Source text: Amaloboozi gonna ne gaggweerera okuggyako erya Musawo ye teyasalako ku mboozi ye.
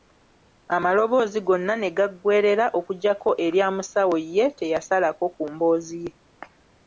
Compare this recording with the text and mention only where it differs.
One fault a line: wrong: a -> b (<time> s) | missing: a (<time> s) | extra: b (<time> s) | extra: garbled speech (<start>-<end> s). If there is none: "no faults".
no faults